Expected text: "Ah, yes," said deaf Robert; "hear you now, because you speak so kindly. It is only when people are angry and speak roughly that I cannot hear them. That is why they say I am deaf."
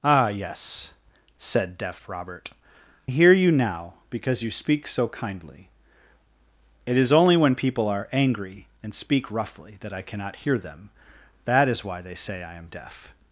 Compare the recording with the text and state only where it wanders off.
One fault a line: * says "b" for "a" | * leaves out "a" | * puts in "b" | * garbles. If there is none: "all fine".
all fine